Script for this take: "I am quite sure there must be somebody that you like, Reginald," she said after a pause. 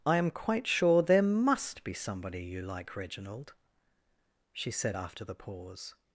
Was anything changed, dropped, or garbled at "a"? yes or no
yes